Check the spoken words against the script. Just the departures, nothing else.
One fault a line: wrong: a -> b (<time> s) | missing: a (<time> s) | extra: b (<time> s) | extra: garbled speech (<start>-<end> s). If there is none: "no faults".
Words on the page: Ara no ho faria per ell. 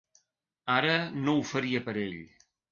no faults